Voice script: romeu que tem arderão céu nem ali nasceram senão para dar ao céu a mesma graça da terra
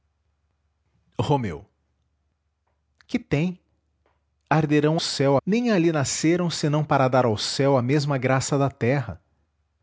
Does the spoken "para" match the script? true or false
true